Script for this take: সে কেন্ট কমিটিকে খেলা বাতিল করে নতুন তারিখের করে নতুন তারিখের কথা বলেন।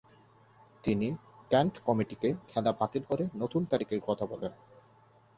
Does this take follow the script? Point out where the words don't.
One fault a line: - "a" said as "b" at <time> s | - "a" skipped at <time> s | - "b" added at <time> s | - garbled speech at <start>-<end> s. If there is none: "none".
- "সে" said as "তিনি" at 0.8 s
- "করে নতুন তারিখের" skipped at 4.0 s